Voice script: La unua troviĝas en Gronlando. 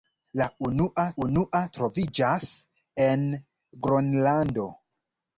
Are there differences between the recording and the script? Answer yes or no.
yes